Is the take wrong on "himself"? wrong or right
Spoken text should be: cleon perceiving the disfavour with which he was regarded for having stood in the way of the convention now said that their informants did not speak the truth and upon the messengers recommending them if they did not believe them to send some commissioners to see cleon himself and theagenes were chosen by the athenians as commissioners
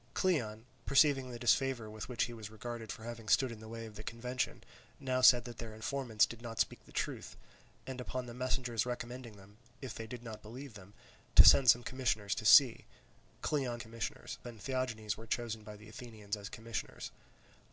wrong